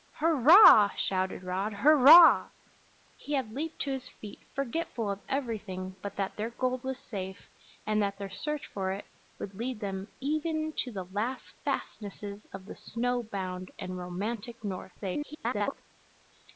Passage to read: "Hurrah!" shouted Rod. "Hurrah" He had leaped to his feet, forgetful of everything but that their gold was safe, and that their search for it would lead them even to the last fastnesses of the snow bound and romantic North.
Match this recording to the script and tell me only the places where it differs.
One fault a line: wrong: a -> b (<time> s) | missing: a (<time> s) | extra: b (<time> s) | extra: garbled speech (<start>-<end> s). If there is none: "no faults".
extra: garbled speech (15.0-15.8 s)